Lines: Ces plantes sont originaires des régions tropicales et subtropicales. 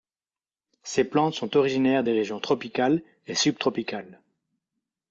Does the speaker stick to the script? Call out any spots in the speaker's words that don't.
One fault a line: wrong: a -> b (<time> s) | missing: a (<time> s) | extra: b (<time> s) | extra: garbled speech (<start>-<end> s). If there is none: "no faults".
no faults